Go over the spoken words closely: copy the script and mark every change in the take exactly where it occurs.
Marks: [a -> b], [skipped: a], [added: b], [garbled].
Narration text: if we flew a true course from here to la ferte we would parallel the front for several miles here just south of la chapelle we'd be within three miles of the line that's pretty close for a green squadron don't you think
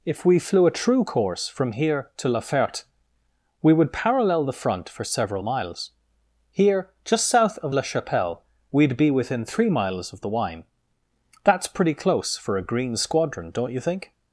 if we flew a true course from here to la ferte we would parallel the front for several miles here just south of la chapelle we'd be within three miles of the [line -> wine] that's pretty close for a green squadron don't you think